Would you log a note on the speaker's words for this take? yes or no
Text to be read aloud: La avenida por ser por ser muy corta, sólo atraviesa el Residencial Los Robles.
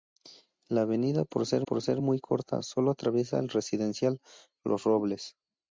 no